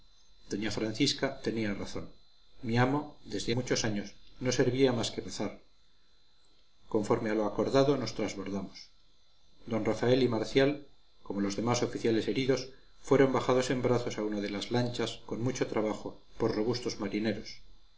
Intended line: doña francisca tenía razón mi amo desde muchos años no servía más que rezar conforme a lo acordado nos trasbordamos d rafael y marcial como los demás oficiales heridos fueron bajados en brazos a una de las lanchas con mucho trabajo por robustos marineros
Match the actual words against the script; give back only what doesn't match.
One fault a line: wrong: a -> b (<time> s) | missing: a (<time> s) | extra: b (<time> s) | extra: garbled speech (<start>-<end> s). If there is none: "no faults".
no faults